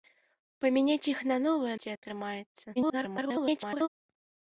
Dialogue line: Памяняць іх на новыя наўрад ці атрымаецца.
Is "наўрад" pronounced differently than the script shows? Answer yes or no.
yes